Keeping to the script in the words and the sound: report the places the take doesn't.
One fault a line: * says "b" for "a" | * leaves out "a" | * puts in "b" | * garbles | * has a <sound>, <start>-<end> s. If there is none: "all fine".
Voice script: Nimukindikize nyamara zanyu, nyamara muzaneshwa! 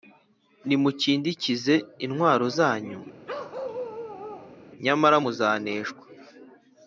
* says "intwaro" for "nyamara"
* has a bark, 3.3-4.6 s